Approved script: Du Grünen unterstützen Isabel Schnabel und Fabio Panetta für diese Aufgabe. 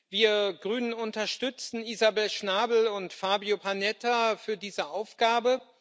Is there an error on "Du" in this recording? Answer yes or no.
yes